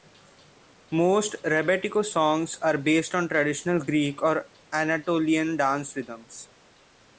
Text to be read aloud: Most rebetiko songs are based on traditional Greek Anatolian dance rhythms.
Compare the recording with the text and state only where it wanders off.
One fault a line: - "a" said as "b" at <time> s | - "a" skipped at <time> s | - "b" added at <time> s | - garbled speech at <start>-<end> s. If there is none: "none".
- "or" added at 4.2 s